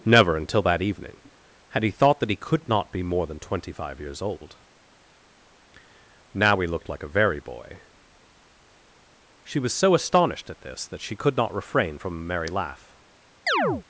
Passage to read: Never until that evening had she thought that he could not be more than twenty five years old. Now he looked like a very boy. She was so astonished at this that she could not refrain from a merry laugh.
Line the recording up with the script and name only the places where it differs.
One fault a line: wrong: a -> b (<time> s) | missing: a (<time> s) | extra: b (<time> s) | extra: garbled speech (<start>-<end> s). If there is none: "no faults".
wrong: she -> he (1.8 s)